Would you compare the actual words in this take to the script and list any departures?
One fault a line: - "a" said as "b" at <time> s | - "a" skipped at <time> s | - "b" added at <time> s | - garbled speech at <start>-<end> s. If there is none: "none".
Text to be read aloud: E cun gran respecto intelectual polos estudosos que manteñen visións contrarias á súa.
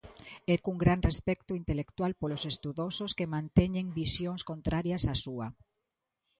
none